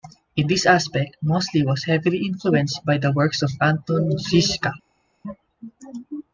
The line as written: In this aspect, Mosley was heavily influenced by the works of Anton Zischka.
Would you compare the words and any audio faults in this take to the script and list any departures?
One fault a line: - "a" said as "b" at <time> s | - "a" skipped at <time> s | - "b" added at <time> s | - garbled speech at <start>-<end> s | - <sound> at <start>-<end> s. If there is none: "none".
none